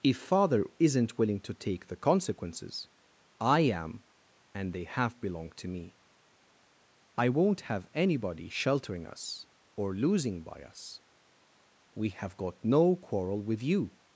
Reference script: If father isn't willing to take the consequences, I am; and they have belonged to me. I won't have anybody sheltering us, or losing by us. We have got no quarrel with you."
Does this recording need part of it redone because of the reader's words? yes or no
no